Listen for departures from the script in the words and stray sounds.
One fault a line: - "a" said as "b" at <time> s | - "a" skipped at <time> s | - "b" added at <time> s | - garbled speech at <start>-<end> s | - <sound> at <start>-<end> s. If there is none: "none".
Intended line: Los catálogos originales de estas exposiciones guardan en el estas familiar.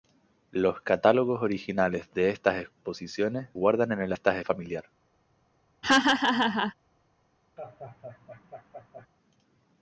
- laugh at 5.8-6.7 s
- laugh at 7.6-9.1 s